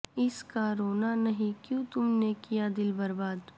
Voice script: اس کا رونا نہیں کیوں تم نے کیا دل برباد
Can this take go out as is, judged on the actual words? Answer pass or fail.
pass